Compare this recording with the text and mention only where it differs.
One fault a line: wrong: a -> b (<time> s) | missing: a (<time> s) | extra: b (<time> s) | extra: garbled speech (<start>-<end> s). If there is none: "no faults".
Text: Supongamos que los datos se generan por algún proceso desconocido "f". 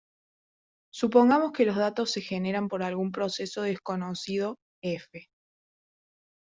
no faults